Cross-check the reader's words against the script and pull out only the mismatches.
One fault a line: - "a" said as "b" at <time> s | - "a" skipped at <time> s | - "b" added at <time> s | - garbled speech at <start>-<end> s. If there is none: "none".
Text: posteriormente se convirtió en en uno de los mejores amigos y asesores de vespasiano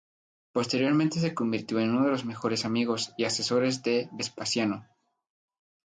- "en" skipped at 1.9 s